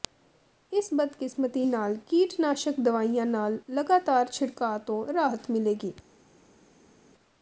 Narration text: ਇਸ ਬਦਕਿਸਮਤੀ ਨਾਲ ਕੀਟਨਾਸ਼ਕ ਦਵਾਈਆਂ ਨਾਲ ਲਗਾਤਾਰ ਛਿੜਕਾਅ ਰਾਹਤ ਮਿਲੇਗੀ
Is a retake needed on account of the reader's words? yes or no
yes